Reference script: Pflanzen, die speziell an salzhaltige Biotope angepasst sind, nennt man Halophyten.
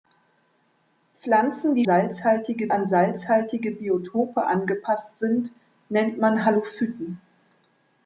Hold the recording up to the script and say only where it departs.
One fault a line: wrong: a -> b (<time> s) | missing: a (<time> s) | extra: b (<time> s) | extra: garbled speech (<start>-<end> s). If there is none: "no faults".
wrong: speziell -> salzhaltige (1.8 s)